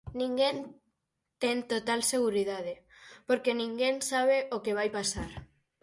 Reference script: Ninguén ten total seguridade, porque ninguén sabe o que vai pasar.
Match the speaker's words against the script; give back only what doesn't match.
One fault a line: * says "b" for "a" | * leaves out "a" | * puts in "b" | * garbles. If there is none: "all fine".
all fine